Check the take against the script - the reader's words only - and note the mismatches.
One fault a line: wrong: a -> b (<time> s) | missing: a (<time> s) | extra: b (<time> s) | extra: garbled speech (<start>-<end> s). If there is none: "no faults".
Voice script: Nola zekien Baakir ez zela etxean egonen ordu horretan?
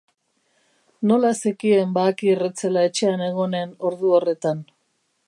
no faults